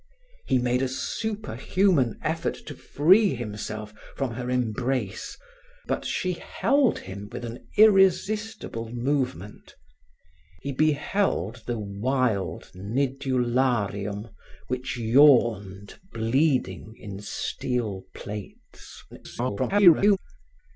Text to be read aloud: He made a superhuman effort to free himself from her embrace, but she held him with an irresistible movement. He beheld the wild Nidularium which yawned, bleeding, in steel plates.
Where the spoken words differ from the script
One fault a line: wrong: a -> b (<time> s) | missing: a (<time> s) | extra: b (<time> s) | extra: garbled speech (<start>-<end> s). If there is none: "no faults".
extra: garbled speech (19.1-20.2 s)